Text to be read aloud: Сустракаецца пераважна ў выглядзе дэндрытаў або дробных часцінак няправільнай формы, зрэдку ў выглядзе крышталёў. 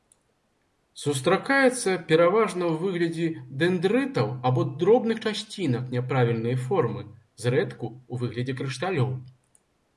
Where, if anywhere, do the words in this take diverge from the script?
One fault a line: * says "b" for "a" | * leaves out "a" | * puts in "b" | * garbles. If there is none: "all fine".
all fine